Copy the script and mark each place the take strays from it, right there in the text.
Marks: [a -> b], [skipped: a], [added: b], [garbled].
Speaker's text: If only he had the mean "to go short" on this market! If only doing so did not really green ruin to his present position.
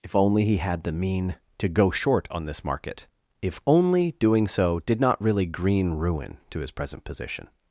If only he had the mean "to go short" on this market! If only doing so did not really green ruin to his present position.